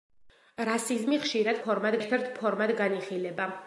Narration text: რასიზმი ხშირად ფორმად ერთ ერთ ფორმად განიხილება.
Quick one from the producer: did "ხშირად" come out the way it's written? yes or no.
yes